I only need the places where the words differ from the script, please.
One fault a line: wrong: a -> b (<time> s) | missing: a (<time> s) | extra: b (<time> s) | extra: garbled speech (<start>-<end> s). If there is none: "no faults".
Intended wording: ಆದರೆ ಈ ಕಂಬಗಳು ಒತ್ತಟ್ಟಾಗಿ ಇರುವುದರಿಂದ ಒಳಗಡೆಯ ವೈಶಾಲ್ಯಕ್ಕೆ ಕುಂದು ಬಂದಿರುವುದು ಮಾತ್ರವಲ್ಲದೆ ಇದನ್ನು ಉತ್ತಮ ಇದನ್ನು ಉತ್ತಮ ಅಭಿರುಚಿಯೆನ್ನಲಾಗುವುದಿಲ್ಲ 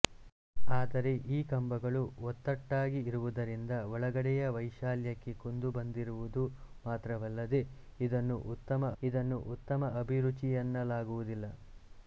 no faults